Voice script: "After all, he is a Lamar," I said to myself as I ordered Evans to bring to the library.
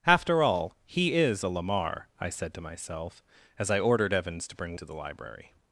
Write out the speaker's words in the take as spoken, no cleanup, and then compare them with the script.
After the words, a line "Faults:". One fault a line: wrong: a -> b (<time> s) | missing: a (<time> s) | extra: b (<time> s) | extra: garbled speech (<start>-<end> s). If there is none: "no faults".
"After all, he is a Lamar," I said to myself as I ordered Evans to bring to the library.
Faults:
no faults